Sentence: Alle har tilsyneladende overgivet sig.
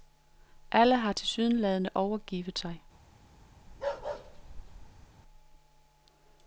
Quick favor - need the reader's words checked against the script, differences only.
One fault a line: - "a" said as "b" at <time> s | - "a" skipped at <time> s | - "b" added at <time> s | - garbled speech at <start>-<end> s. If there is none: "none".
none